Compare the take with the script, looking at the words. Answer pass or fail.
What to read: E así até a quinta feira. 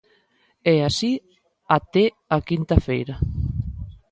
pass